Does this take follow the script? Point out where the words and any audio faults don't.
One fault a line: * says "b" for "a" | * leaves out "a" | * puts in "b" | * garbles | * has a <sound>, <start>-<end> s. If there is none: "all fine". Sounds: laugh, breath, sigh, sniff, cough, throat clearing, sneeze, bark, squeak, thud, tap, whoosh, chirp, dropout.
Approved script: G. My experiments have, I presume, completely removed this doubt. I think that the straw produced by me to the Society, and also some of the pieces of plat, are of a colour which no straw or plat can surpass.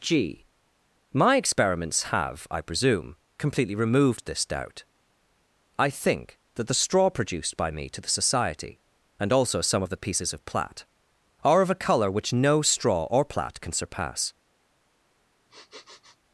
* has a sniff, 15.5-16.2 s